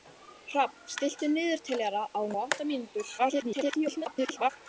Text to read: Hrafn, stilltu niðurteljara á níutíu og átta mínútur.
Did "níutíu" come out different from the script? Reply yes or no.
yes